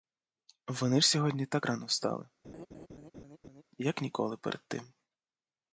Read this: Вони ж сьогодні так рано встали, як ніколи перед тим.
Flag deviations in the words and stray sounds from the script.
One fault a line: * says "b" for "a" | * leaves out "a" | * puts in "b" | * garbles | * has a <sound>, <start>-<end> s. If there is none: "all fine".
* has a laugh, 2.4-3.6 s